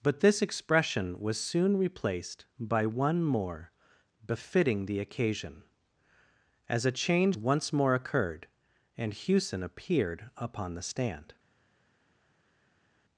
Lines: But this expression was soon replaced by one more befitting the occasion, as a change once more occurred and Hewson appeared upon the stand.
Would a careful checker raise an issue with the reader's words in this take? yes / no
no